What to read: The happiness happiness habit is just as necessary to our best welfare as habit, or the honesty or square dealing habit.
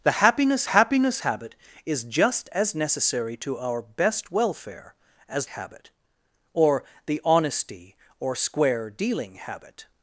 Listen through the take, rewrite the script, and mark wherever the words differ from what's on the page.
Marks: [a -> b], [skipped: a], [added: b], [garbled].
The happiness happiness habit is just as necessary to our best welfare as habit, or the honesty or square dealing habit.